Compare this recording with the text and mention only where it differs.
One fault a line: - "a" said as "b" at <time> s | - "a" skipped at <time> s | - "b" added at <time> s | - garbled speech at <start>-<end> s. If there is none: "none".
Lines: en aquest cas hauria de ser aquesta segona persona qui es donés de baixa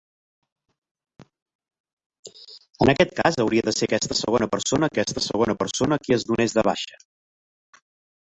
- "aquesta segona persona" added at 5.0 s